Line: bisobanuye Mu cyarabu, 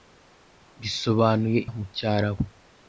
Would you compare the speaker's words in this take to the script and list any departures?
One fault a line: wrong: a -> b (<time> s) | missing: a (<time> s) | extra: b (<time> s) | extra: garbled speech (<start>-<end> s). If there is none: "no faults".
no faults